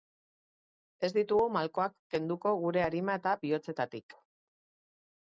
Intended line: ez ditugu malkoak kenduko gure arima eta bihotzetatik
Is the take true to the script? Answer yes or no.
yes